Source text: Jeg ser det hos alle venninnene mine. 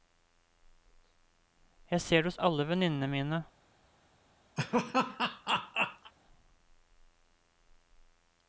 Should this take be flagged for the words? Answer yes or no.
no